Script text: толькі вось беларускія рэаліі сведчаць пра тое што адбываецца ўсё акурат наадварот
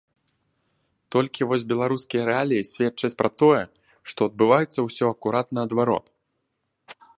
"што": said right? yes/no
yes